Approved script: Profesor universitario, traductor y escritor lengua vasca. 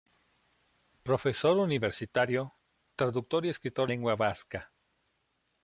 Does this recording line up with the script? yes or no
yes